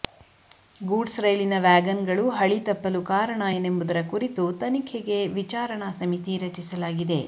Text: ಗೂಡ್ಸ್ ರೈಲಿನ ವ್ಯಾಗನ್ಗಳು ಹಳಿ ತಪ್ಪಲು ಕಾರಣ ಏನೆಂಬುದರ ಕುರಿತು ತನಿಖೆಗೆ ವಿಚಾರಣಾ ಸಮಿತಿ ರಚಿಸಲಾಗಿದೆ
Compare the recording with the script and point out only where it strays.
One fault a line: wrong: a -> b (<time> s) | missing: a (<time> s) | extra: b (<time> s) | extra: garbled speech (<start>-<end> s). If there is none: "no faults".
no faults